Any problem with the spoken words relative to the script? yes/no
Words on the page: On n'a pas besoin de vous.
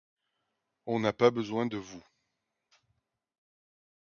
no